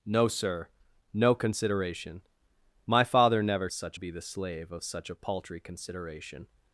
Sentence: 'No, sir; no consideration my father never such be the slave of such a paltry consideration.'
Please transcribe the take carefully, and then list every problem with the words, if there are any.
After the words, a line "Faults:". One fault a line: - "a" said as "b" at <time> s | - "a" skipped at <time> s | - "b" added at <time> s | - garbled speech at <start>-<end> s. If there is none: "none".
'No, sir; no consideration my father never such be the slave of such a paltry consideration.'
Faults:
none